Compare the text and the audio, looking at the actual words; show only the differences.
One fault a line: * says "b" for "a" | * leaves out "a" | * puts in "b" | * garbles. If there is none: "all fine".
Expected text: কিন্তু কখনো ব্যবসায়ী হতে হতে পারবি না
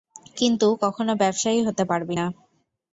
* leaves out "হতে"